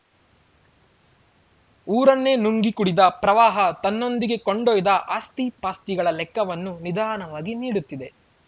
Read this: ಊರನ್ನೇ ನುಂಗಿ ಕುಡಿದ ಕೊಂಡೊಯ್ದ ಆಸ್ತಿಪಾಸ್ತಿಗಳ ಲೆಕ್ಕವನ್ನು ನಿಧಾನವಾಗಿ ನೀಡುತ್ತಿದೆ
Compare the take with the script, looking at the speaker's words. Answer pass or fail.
fail